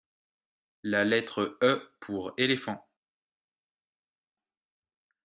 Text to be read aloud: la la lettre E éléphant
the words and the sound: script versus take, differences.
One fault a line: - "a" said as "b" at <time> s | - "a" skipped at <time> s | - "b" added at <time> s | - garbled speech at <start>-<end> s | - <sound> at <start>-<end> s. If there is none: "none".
- "la" skipped at 1.0 s
- "pour" added at 2.0 s